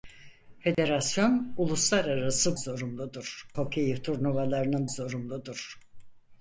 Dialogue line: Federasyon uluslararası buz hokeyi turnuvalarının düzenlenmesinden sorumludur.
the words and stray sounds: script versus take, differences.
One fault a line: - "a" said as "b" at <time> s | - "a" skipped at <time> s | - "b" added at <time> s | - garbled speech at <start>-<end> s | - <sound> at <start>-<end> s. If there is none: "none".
- dropout at 0.7-0.8 s
- "buz" said as "sorumludur" at 2.5 s
- "düzenlenmesinden" skipped at 4.9 s